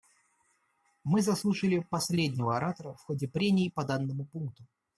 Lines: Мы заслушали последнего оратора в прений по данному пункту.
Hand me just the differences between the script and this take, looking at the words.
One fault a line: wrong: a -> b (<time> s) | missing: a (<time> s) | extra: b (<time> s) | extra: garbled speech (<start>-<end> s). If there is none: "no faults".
extra: ходе (3.0 s)